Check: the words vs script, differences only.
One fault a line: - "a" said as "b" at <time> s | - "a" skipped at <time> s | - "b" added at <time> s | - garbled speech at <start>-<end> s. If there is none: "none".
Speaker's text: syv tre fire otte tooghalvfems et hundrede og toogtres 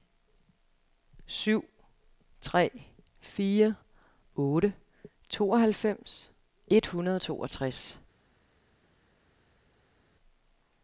none